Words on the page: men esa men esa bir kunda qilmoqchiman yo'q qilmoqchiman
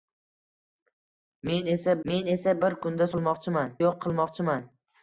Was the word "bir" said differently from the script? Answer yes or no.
no